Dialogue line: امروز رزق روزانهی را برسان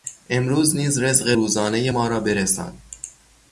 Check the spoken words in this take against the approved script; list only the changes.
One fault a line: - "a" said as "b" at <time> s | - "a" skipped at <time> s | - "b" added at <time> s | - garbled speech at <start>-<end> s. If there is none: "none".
- "نیز" added at 0.8 s
- "ما" added at 1.9 s